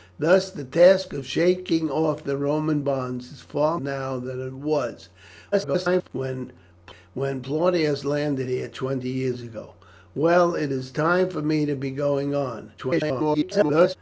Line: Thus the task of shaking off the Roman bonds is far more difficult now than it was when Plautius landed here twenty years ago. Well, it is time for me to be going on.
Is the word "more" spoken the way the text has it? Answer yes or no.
no